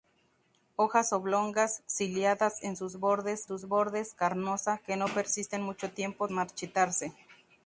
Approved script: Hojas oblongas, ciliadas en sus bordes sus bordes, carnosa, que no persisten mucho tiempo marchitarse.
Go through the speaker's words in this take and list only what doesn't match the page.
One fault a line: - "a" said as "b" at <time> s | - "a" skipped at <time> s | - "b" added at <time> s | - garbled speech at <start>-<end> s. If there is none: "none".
none